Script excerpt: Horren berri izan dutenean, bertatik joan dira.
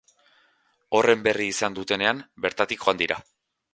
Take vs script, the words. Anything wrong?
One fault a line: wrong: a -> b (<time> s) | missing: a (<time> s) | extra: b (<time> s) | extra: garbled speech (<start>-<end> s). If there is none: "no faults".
no faults